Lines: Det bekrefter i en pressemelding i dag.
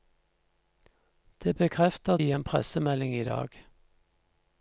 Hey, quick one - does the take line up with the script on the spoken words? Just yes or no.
yes